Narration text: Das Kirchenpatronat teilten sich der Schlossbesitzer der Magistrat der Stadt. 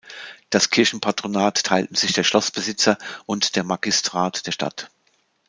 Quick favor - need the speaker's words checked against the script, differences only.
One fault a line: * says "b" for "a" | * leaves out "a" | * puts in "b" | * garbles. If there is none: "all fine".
* puts in "und"